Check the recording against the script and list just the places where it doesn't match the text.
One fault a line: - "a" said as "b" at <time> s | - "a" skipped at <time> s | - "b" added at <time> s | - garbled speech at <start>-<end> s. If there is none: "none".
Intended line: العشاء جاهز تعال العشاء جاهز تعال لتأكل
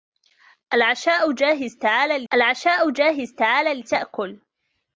none